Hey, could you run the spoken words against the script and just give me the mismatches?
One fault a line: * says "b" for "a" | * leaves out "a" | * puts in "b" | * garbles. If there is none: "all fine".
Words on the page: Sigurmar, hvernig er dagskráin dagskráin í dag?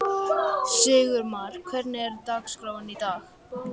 * leaves out "dagskráin"